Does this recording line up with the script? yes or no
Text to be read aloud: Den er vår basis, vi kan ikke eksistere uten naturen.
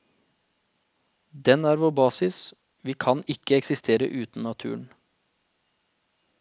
yes